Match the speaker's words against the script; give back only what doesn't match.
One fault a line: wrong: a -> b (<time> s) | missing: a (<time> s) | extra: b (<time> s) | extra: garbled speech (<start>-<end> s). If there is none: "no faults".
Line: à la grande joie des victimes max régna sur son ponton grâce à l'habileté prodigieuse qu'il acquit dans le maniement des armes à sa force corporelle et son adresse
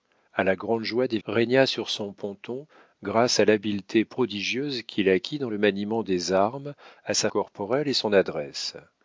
missing: victimes max (1.2 s)
missing: force (7.3 s)